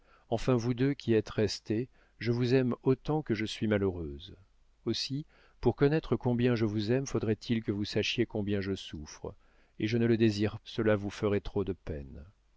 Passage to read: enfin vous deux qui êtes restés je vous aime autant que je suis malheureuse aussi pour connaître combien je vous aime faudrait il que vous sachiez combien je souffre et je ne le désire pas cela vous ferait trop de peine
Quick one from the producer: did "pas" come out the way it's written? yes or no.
no